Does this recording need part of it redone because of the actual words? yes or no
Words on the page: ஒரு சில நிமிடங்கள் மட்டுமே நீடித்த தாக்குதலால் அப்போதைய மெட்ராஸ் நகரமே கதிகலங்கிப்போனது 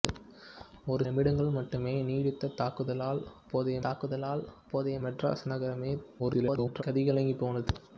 yes